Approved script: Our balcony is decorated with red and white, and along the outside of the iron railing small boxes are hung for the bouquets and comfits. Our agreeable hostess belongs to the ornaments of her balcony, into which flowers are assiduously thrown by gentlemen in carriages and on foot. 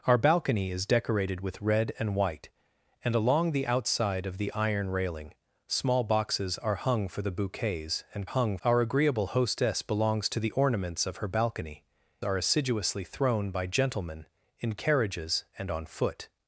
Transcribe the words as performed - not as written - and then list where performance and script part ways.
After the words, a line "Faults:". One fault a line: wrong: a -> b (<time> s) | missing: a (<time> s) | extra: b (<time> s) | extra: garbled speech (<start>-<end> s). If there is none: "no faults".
Our balcony is decorated with red and white, and along the outside of the iron railing small boxes are hung for the bouquets and hung. Our agreeable hostess belongs to the ornaments of her balcony, are assiduously thrown by gentlemen in carriages and on foot.
Faults:
wrong: comfits -> hung (8.2 s)
missing: into which flowers (11.9 s)